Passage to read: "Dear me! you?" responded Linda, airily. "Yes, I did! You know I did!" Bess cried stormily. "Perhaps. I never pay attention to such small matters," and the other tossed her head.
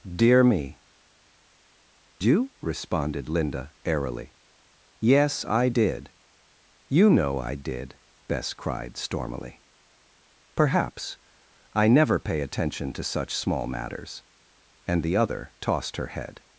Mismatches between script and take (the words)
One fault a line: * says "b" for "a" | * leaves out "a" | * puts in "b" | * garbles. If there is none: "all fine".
all fine